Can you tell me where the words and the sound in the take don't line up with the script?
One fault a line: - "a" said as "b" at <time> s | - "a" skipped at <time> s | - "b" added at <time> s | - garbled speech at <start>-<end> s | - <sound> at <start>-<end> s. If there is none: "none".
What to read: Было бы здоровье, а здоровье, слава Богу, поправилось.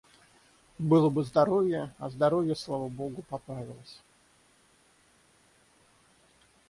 none